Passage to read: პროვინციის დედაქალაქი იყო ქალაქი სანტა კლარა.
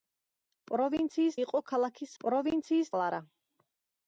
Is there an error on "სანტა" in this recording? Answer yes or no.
yes